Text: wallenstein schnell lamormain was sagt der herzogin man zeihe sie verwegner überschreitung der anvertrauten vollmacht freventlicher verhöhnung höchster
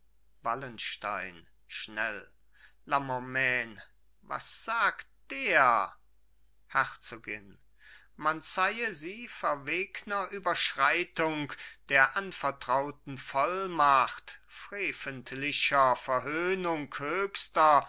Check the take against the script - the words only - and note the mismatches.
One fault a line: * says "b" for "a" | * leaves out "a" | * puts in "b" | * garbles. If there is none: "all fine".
all fine